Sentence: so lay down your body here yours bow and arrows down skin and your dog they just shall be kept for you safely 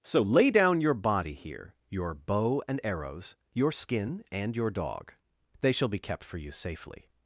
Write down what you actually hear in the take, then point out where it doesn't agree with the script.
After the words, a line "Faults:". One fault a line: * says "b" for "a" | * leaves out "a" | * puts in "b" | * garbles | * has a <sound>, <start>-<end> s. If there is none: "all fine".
so lay down your body here your bow and arrows your skin and your dog they shall be kept for you safely
Faults:
* says "your" for "yours"
* says "your" for "down"
* leaves out "just"